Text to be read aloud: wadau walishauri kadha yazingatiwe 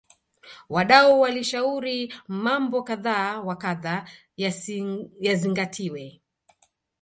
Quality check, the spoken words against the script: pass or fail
fail